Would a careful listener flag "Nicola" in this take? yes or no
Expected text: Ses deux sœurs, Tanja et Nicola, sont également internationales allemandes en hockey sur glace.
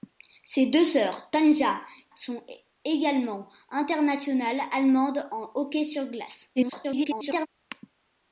yes